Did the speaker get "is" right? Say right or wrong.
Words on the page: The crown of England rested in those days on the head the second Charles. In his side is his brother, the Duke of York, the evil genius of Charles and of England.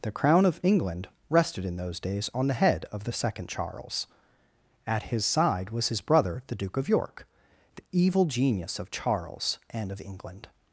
wrong